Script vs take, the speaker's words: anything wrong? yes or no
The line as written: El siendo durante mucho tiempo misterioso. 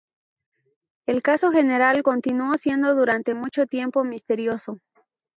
yes